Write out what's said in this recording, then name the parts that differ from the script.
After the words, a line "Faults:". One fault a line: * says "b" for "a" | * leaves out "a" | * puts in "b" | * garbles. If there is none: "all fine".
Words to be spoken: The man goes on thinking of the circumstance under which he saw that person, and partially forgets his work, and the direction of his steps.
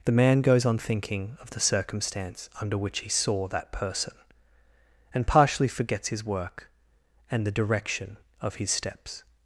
The man goes on thinking of the circumstance under which he saw that person, and partially forgets his work, and the direction of his steps.
Faults:
all fine